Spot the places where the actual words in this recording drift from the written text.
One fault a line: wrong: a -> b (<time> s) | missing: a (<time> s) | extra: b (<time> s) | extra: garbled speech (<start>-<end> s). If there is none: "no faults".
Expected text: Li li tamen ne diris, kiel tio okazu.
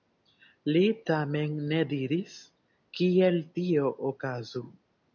missing: li (0.8 s)